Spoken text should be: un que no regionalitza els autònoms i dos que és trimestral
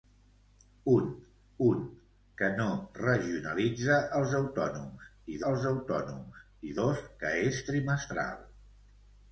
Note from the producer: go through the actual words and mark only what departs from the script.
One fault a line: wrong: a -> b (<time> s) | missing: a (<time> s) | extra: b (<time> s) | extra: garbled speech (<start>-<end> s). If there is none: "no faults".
extra: un (1.7 s)
extra: els autònoms i (5.5 s)